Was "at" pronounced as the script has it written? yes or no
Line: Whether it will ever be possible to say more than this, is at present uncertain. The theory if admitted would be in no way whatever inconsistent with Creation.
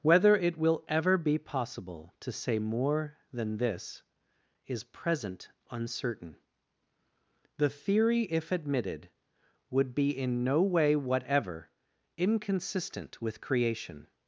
no